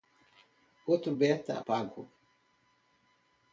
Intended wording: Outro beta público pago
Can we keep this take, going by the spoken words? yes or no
no